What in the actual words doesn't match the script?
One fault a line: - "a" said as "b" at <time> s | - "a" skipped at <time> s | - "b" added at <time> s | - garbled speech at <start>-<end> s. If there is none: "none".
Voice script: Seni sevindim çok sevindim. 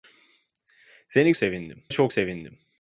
none